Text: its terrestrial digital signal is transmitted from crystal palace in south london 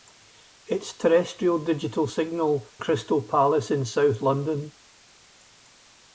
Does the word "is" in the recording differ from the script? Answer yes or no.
yes